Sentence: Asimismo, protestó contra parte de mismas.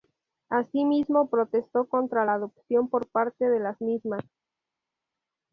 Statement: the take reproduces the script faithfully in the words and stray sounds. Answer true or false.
false